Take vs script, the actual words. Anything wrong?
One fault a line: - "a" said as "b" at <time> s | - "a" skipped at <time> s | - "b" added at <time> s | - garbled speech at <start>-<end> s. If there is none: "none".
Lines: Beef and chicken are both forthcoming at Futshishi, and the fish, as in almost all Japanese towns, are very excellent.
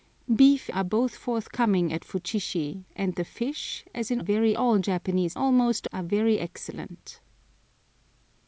- "and chicken" skipped at 0.7 s
- "almost" said as "very" at 4.2 s
- "towns" said as "almost" at 5.3 s